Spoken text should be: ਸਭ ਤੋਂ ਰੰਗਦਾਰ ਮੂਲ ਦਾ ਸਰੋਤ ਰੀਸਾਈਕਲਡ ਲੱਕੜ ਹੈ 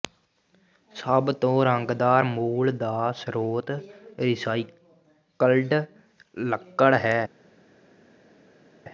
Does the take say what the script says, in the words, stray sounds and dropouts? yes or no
yes